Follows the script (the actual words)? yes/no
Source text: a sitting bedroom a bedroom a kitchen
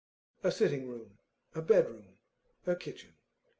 no